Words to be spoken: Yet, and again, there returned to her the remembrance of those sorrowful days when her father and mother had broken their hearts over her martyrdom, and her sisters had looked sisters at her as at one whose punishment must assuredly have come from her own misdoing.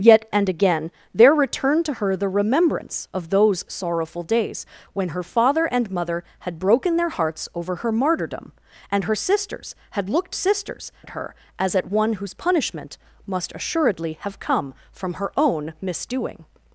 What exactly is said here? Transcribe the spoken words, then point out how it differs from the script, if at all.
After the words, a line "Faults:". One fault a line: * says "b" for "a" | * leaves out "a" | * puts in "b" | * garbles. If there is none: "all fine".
Yet, and again, there returned to her the remembrance of those sorrowful days when her father and mother had broken their hearts over her martyrdom, and her sisters had looked sisters at her as at one whose punishment must assuredly have come from her own misdoing.
Faults:
all fine